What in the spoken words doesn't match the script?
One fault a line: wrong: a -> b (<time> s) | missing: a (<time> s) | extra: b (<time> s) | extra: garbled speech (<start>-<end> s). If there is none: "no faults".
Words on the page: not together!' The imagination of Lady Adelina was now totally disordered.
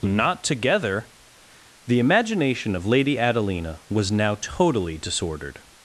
no faults